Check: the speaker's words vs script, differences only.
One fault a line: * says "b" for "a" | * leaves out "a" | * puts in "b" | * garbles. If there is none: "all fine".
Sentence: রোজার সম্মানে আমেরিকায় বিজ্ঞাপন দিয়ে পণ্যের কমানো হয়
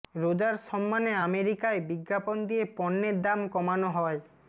* puts in "দাম"